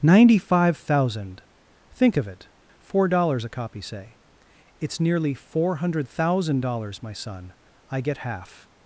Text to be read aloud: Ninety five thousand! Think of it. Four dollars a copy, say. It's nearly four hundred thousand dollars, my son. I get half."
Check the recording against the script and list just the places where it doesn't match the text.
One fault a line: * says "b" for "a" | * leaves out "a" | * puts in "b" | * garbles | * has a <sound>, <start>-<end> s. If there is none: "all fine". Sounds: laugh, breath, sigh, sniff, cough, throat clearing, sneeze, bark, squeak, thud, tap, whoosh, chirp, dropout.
all fine